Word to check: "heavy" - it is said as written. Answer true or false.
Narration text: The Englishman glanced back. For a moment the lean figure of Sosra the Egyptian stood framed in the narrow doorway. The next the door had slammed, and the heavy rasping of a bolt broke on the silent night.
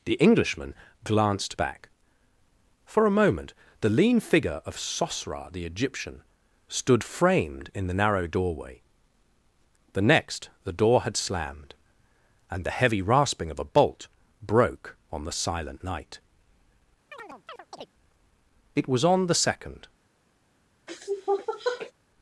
true